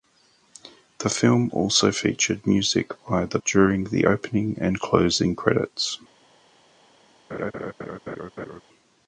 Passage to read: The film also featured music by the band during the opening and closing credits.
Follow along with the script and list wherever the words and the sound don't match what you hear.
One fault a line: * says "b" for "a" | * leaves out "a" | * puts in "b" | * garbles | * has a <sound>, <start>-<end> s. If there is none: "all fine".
* leaves out "band"
* has a laugh, 7.3-8.6 s